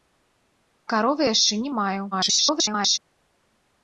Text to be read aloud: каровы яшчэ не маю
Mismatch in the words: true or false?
true